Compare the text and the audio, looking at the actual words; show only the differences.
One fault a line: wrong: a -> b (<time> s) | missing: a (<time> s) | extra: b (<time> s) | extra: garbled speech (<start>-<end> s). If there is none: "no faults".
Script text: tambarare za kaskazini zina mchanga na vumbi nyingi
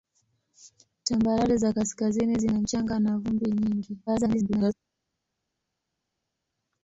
extra: garbled speech (4.1-4.7 s)